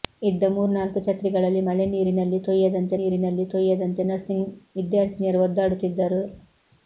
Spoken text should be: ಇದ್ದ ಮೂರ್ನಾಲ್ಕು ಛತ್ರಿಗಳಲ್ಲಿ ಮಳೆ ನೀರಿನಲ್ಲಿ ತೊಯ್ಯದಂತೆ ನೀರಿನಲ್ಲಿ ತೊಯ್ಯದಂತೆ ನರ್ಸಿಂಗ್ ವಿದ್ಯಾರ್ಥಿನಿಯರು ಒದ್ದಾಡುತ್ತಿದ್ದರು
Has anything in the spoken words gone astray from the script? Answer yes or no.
no